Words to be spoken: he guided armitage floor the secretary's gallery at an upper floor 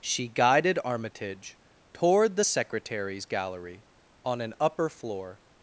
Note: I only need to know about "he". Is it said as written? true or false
false